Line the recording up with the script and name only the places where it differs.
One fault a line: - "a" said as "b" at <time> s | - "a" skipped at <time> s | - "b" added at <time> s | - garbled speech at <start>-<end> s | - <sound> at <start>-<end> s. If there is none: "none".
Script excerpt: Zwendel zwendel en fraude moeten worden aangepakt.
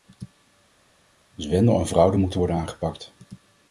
- "zwendel" skipped at 1.8 s